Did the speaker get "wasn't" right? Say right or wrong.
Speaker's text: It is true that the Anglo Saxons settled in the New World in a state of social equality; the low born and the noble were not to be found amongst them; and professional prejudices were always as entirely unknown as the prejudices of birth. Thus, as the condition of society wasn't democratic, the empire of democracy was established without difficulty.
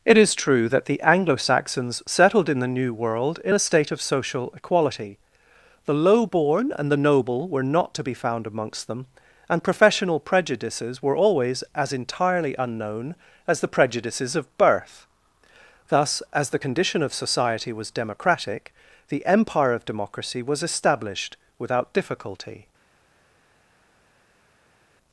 wrong